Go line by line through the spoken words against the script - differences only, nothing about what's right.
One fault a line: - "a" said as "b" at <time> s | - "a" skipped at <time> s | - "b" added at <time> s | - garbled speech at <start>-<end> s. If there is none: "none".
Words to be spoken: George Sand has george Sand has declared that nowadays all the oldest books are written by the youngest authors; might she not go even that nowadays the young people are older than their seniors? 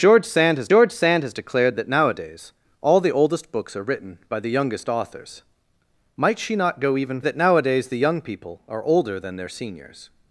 none